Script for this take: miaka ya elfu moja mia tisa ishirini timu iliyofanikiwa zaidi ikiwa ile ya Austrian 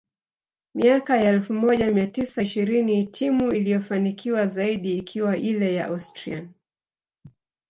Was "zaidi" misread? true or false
false